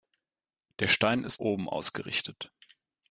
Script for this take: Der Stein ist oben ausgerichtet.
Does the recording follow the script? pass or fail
pass